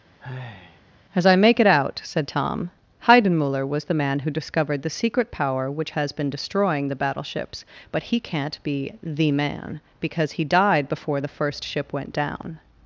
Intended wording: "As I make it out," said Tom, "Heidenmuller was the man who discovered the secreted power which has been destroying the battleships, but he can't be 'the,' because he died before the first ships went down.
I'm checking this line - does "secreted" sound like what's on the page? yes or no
no